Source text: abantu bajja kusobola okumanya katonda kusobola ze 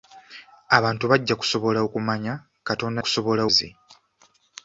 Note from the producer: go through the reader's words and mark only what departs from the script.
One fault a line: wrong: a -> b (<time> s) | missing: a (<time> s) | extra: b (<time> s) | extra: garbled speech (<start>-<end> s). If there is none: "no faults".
no faults